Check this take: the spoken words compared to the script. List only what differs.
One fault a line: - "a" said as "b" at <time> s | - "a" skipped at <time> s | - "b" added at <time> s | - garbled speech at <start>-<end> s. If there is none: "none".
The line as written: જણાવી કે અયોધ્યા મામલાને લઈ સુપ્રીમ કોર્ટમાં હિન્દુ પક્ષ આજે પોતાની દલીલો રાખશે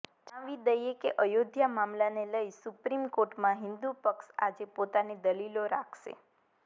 - "દઈએ" added at 0.6 s